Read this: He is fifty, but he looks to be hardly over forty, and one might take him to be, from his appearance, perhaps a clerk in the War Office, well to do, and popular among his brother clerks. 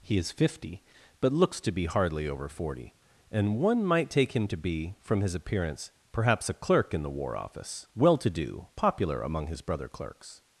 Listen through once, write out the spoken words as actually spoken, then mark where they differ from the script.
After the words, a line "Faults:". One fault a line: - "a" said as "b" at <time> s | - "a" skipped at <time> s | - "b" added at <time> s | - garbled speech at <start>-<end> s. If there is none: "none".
He is fifty, but looks to be hardly over forty, and one might take him to be, from his appearance, perhaps a clerk in the War Office, well to do, popular among his brother clerks.
Faults:
- "he" skipped at 1.3 s
- "and" skipped at 8.7 s